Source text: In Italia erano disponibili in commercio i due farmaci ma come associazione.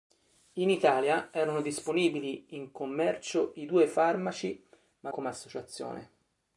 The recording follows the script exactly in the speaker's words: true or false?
true